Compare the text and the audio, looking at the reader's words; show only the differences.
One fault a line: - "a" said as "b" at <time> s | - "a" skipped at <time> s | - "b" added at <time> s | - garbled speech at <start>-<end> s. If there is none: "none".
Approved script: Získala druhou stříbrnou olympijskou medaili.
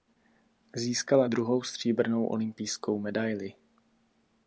none